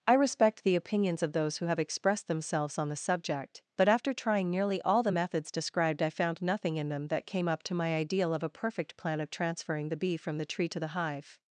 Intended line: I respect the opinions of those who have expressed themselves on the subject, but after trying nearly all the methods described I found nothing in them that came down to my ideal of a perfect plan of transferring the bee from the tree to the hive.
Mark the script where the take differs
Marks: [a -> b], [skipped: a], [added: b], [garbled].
I respect the opinions of those who have expressed themselves on the subject, but after trying nearly all the methods described I found nothing in them that came [down -> up] to my ideal of a perfect plan of transferring the bee from the tree to the hive.